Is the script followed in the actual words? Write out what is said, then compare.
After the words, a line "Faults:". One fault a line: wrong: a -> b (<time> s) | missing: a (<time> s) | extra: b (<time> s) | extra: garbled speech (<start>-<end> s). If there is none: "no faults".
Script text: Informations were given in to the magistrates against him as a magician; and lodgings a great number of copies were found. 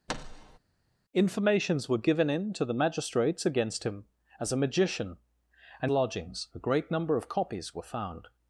Informations were given in to the magistrates against him as a magician; and lodgings a great number of copies were found.
Faults:
no faults